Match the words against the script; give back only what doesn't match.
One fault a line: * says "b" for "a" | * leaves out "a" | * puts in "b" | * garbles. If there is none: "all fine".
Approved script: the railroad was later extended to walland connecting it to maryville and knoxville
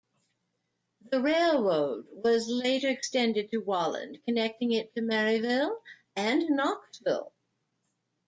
all fine